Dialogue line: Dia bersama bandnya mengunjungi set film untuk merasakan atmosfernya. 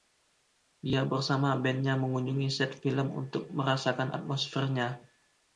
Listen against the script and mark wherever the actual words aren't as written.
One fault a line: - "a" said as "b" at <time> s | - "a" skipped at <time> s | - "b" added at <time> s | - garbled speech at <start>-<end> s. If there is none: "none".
none